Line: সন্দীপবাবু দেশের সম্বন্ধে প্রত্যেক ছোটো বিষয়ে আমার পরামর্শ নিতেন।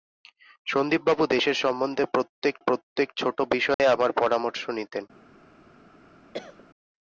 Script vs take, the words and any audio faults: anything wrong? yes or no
yes